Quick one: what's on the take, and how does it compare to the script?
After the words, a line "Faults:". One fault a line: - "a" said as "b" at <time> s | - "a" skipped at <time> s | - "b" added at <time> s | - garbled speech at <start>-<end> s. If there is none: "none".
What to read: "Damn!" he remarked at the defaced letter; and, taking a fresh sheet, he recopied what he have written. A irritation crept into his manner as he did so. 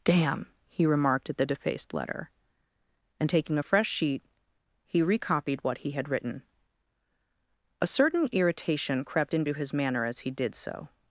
"Damn!" he remarked at the defaced letter; and, taking a fresh sheet, he recopied what he had written. A certain irritation crept into his manner as he did so.
Faults:
- "have" said as "had" at 5.9 s
- "certain" added at 7.9 s